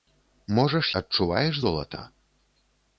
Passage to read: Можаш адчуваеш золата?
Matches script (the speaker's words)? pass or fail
pass